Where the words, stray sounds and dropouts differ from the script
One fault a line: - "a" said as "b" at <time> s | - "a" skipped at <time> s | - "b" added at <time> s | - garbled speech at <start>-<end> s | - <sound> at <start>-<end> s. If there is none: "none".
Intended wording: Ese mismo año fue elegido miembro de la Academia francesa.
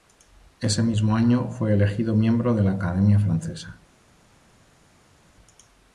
none